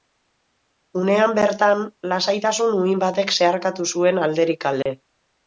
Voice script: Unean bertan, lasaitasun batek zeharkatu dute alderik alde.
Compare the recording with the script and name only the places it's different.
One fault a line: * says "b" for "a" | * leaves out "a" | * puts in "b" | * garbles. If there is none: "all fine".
* puts in "uhin"
* says "zuen" for "dute"